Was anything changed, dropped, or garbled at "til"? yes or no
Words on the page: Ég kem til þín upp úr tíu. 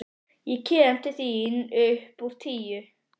no